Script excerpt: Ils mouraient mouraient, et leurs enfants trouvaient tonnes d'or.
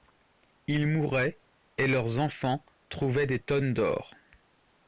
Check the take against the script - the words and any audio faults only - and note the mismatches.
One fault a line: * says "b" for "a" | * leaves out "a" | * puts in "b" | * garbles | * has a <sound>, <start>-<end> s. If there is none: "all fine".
* leaves out "mouraient"
* puts in "des"